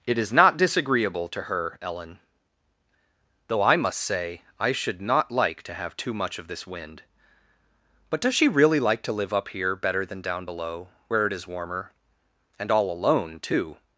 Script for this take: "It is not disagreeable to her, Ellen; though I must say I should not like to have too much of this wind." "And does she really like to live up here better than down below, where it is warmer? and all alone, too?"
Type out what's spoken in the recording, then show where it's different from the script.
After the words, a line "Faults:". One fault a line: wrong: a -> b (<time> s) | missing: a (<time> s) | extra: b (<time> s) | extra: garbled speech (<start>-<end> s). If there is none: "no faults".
"It is not disagreeable to her, Ellen; though I must say I should not like to have too much of this wind." "But does she really like to live up here better than down below, where it is warmer? and all alone, too?"
Faults:
wrong: And -> But (8.1 s)